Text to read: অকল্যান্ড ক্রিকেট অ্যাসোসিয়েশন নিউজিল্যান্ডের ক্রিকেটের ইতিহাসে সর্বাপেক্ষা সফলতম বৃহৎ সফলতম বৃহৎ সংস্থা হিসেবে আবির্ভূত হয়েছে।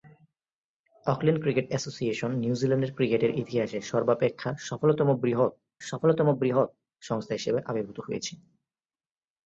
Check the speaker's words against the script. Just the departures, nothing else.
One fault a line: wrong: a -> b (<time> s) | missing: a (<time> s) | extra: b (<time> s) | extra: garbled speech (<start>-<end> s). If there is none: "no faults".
no faults